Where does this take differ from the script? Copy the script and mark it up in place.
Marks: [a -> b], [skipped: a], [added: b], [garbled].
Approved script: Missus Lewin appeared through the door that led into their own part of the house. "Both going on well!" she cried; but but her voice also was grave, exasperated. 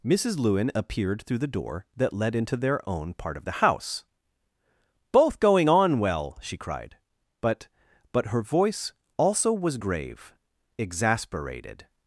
Missus Lewin appeared through the door that led into their own part of the house. "Both going on well!" she cried; but but her voice also was grave, exasperated.